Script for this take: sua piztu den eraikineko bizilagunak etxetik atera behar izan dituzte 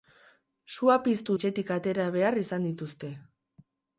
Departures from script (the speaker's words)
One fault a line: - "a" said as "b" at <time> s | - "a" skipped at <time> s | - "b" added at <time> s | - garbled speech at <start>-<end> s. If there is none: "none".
- "den eraikineko bizilagunak" skipped at 1.4 s